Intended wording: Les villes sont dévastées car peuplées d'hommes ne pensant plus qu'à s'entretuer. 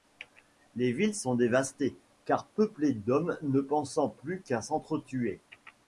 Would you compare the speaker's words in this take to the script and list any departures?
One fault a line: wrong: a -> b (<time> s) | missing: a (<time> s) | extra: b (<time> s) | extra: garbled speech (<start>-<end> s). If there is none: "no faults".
no faults